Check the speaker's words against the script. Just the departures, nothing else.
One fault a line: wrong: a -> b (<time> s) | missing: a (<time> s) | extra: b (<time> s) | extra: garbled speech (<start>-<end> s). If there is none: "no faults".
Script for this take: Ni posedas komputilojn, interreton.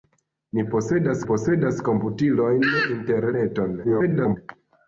extra: posedas (1.3 s)
extra: garbled speech (3.8-4.4 s)